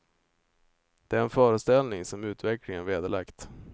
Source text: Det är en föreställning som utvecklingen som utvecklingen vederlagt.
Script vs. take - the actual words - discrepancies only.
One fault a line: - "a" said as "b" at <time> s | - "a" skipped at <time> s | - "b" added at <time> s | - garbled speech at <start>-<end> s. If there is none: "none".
- "som utvecklingen" skipped at 2.9 s